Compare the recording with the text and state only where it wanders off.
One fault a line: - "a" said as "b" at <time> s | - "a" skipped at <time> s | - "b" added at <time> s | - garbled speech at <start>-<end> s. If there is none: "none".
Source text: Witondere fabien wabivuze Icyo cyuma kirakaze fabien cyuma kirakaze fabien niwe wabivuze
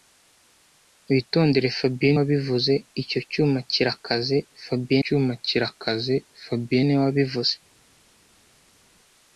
none